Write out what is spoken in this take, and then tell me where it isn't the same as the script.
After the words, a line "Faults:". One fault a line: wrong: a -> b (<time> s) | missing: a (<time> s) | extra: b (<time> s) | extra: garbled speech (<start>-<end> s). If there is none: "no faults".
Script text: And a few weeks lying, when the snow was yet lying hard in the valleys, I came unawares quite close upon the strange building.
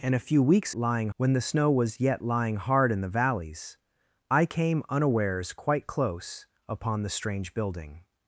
And a few weeks lying, when the snow was yet lying hard in the valleys, I came unawares quite close upon the strange building.
Faults:
no faults